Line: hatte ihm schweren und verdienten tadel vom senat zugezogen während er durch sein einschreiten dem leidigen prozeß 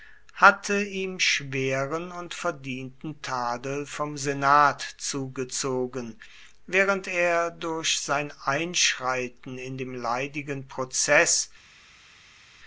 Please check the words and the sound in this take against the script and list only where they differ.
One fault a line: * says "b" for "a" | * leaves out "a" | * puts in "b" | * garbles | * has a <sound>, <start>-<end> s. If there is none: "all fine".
* puts in "in"